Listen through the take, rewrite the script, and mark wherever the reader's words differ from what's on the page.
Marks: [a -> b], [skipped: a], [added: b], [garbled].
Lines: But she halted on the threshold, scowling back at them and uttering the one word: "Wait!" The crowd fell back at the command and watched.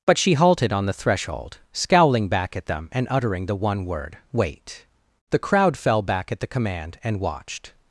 But she halted on the threshold, scowling back at them and uttering the one word: "Wait!" The crowd fell back at the command and watched.